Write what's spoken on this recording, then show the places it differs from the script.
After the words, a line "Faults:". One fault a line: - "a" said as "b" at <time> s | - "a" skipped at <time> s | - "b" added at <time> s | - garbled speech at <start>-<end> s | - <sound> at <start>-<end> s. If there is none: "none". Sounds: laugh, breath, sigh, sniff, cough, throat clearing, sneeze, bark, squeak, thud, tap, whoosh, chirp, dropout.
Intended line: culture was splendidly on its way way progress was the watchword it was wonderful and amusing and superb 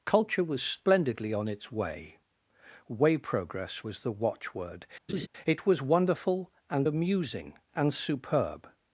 culture was splendidly on its way way progress was the watchword it was wonderful and amusing and superb
Faults:
- laugh at 5.1-5.3 s